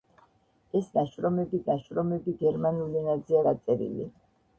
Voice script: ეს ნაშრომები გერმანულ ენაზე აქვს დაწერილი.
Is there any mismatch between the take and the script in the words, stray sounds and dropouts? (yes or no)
yes